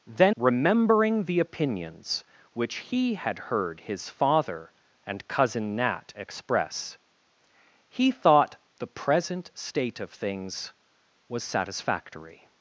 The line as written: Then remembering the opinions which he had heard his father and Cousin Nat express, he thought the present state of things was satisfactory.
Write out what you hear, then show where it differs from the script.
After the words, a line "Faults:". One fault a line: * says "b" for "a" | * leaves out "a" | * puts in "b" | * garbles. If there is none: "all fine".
Then remembering the opinions which he had heard his father and Cousin Nat express, he thought the present state of things was satisfactory.
Faults:
all fine